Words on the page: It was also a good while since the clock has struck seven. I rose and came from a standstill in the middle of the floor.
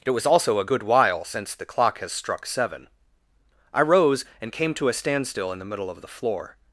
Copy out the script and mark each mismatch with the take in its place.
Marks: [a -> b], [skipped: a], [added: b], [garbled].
It was also a good while since the clock has struck seven. I rose and came [from -> to] a standstill in the middle of the floor.